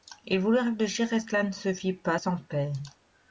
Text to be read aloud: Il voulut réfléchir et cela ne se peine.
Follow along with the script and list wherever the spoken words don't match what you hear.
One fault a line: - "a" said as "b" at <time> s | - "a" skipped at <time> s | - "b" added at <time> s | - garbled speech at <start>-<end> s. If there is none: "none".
- "fit pas sans" added at 1.8 s